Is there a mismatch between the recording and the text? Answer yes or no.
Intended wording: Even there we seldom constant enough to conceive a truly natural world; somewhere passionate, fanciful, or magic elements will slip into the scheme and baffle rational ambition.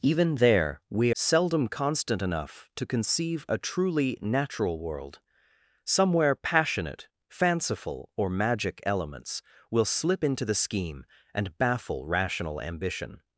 no